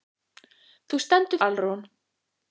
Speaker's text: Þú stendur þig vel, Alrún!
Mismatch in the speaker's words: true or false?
true